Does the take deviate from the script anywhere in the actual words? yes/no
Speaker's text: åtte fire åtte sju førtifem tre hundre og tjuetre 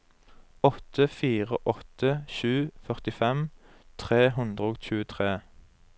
no